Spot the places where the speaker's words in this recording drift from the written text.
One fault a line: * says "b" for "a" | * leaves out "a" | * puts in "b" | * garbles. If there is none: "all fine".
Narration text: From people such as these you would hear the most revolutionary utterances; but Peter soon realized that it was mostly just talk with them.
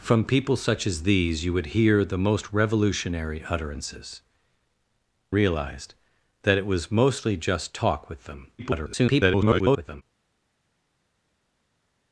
* leaves out "but Peter soon"
* garbles